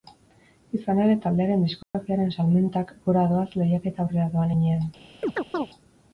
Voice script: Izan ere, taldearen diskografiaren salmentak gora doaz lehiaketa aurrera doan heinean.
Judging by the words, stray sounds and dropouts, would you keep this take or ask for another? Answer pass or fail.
fail